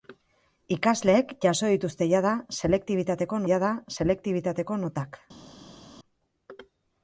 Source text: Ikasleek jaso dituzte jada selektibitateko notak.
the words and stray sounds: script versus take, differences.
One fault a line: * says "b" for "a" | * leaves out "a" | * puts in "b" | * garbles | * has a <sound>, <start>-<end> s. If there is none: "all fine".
* puts in "jada selektibitateko"